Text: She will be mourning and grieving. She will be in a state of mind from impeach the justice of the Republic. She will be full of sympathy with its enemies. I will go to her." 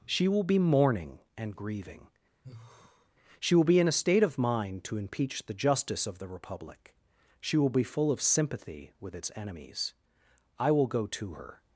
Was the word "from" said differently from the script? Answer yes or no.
yes